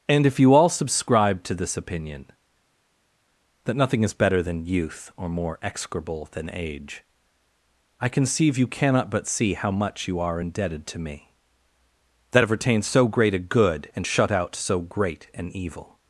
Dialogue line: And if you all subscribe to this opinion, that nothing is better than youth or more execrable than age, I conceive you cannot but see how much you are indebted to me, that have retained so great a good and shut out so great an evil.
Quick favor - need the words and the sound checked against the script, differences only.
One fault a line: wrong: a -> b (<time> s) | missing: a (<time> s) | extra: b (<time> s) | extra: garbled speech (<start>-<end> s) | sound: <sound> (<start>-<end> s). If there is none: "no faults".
no faults